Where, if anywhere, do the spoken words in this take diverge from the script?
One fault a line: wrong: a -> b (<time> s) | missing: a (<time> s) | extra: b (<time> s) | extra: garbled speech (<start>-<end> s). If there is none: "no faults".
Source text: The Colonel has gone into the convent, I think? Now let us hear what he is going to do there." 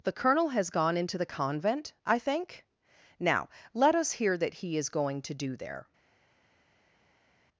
wrong: what -> that (4.4 s)